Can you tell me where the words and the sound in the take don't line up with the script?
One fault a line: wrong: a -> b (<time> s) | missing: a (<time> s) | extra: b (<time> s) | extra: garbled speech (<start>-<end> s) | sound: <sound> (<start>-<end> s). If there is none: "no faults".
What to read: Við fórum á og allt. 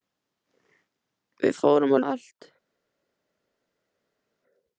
no faults